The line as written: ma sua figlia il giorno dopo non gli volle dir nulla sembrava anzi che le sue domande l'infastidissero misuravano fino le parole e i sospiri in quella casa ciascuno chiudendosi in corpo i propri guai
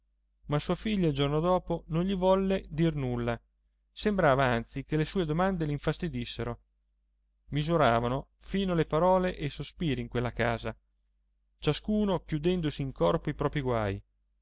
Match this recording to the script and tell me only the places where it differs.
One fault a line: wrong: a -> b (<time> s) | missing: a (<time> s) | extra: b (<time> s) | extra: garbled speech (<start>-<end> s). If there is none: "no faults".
no faults